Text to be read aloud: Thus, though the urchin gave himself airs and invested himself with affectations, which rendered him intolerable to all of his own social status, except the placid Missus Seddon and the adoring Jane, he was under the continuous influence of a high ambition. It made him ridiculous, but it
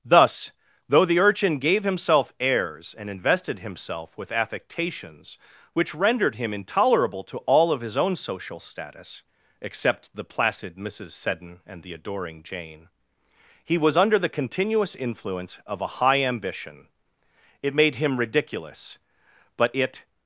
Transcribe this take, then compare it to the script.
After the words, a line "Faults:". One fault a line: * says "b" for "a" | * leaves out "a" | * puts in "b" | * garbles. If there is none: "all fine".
Thus, though the urchin gave himself airs and invested himself with affectations, which rendered him intolerable to all of his own social status, except the placid Missus Seddon and the adoring Jane, he was under the continuous influence of a high ambition. It made him ridiculous, but it
Faults:
all fine